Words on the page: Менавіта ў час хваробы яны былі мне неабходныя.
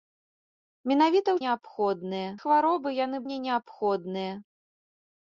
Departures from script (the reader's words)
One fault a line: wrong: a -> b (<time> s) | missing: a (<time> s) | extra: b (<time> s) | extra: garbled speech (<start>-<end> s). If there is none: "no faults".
wrong: час -> неабходныя (1.4 s)
missing: былі (3.2 s)